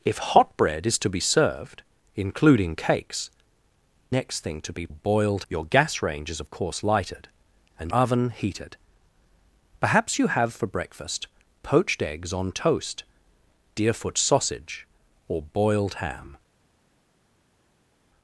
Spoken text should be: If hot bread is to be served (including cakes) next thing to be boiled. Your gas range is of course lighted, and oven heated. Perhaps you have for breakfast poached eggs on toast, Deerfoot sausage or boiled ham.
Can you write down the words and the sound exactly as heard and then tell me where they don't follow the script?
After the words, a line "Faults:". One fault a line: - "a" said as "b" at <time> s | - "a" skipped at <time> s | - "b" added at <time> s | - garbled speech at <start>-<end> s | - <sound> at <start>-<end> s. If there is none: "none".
If hot bread is to be served (including cakes) next thing to be boiled. Your gas range is of course lighted, and oven heated. Perhaps you have for breakfast poached eggs on toast, Deerfoot sausage or boiled ham.
Faults:
none